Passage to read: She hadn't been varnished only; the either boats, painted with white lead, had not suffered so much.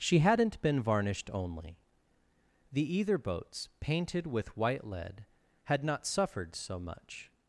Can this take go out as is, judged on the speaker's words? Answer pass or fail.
pass